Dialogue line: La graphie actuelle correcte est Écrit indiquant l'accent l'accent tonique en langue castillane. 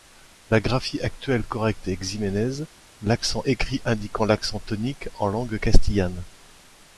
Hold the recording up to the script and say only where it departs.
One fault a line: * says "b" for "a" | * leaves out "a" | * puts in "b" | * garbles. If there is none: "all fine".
* puts in "Ximénez l'accent"
* leaves out "l'accent"